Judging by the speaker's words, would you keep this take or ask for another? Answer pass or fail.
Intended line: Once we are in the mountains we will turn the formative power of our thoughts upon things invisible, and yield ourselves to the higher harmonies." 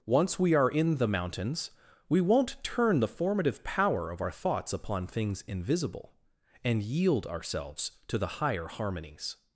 fail